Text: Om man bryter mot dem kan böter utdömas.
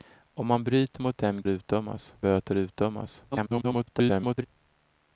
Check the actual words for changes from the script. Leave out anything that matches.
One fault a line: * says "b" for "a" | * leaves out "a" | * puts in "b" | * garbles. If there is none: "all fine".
* says "utdömas" for "kan"
* garbles